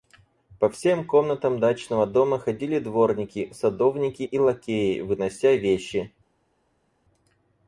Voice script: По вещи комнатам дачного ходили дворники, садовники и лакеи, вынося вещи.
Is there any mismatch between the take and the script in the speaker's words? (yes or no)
yes